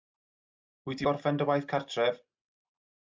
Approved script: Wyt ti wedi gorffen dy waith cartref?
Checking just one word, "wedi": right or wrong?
wrong